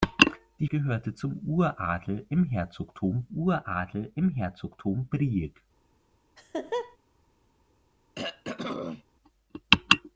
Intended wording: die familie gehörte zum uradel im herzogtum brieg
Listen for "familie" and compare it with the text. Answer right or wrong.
wrong